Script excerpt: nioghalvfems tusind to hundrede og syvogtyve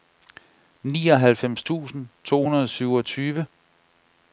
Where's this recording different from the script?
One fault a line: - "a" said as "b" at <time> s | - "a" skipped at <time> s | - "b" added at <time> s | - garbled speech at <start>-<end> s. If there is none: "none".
none